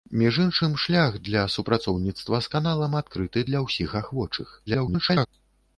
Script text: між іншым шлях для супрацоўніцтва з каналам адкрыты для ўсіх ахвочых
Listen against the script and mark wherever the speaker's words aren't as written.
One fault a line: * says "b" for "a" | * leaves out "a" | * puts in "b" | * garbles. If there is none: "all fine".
* garbles